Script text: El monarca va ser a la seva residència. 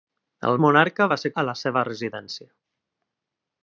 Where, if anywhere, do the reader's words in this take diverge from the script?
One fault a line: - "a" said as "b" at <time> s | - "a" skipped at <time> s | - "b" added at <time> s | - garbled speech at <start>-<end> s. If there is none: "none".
none